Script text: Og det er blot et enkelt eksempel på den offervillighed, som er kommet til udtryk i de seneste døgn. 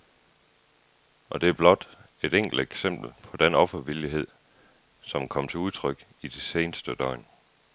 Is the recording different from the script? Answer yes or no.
no